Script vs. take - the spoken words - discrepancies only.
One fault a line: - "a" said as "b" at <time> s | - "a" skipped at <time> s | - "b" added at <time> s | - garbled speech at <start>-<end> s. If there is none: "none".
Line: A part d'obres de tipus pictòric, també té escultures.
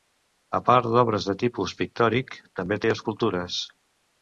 none